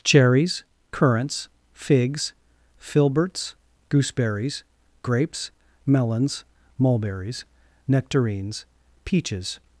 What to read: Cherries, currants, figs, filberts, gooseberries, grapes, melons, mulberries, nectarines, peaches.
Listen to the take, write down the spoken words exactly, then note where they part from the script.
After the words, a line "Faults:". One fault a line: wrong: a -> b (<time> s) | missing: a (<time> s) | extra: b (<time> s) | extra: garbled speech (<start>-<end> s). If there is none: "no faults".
Cherries, currants, figs, filberts, gooseberries, grapes, melons, mulberries, nectarines, peaches.
Faults:
no faults